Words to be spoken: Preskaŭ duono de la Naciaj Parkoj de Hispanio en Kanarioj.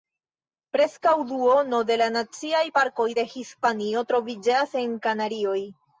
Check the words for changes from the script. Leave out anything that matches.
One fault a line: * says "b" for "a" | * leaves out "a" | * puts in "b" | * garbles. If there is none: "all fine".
* puts in "troviĝas"